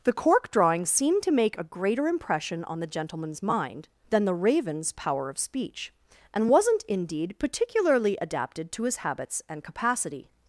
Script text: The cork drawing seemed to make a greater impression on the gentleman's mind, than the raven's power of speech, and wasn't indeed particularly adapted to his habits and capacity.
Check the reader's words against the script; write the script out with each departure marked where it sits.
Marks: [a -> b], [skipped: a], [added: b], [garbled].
The cork drawing seemed to make a greater impression on the gentleman's mind, than the raven's power of speech, and wasn't indeed particularly adapted to his habits and capacity.